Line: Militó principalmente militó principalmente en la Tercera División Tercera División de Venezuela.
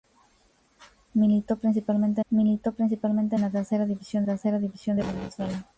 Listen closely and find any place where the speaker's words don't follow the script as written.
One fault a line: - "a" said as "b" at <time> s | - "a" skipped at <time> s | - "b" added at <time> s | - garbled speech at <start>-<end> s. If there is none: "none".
none